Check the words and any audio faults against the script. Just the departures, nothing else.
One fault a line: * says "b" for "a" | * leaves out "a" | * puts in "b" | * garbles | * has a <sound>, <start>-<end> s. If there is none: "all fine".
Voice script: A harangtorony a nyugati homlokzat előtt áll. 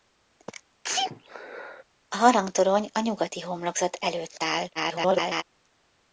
* has a sneeze, 0.8-1.8 s
* garbles